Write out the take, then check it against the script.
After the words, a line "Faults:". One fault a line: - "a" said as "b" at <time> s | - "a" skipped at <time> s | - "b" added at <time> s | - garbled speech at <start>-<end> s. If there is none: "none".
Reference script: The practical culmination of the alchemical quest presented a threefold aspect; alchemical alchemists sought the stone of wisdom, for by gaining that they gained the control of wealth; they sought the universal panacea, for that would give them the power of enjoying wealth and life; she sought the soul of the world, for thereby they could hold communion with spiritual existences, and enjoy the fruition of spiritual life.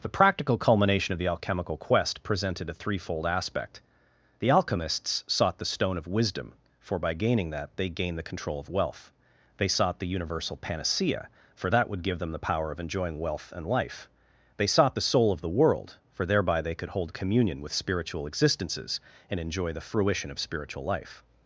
The practical culmination of the alchemical quest presented a threefold aspect; the alchemists sought the stone of wisdom, for by gaining that they gained the control of wealth; they sought the universal panacea, for that would give them the power of enjoying wealth and life; they sought the soul of the world, for thereby they could hold communion with spiritual existences, and enjoy the fruition of spiritual life.
Faults:
- "alchemical" said as "the" at 4.4 s
- "she" said as "they" at 14.5 s